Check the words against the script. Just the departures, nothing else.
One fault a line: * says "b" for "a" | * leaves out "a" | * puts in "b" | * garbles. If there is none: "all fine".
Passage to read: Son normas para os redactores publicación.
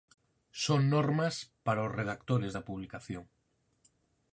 * puts in "da"